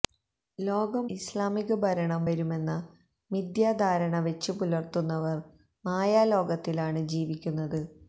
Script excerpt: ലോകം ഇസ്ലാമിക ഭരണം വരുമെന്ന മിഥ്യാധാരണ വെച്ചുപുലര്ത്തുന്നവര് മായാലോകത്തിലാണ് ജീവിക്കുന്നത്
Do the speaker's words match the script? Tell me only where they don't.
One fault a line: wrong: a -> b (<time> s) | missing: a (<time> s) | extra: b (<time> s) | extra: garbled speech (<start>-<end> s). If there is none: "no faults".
no faults